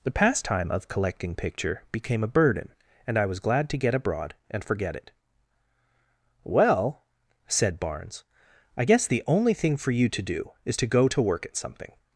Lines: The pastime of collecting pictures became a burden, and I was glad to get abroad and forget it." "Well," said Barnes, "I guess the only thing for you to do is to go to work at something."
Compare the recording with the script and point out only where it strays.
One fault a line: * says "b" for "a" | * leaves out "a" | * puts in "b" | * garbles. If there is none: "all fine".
* says "picture" for "pictures"